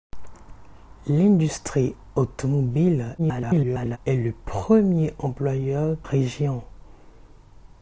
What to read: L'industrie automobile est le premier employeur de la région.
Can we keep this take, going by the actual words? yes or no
no